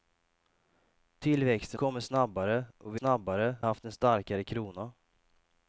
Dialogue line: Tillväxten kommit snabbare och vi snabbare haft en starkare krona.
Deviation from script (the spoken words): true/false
false